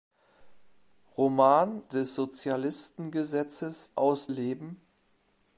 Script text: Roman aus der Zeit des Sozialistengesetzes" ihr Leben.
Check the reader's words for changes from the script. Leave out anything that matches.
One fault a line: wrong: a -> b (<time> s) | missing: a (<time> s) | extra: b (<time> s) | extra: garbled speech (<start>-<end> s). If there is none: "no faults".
missing: aus der Zeit (1.8 s)
wrong: ihr -> aus (3.9 s)